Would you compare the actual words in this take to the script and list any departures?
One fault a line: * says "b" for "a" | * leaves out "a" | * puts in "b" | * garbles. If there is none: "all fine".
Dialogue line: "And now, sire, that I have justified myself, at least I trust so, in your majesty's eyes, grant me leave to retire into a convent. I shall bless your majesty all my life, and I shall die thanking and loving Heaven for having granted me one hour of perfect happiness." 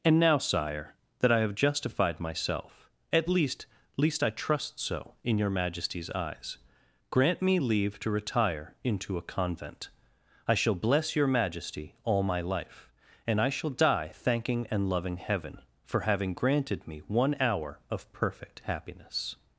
* puts in "least"